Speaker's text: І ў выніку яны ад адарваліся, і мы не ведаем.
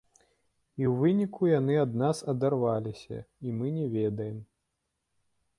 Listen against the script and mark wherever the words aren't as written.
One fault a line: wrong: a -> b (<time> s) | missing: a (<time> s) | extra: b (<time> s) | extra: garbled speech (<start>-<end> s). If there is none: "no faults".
extra: нас (2.0 s)